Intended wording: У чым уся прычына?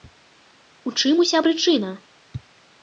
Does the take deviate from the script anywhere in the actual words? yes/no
no